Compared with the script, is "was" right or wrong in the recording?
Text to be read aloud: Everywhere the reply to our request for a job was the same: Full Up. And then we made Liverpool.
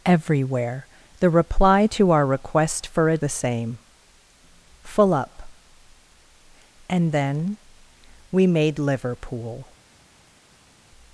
wrong